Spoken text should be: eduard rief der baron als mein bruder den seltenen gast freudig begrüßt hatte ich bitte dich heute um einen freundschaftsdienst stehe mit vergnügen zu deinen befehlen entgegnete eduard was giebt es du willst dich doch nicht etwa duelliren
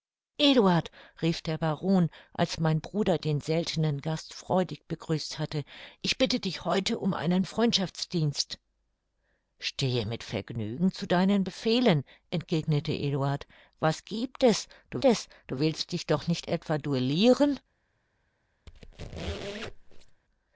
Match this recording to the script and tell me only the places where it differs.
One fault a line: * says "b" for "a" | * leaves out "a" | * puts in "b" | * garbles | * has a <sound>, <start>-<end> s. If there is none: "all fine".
* puts in "es du"
* has a squeak, 18.7-20.2 s